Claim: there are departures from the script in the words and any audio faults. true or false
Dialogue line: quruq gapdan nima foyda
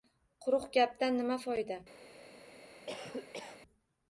true